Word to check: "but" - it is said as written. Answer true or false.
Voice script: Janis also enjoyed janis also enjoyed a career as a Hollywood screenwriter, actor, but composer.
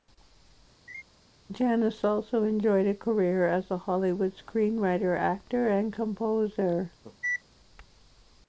false